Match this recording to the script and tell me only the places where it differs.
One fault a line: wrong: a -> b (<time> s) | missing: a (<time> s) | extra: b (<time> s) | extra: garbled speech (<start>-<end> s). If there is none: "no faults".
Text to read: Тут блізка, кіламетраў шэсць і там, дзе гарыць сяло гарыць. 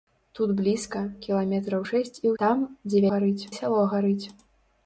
no faults